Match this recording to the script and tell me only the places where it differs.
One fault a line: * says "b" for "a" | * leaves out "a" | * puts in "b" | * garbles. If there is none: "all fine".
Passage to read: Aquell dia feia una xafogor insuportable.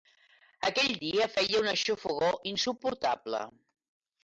all fine